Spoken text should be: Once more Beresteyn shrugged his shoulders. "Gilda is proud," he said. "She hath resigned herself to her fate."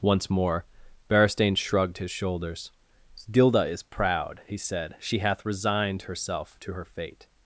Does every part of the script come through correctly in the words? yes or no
yes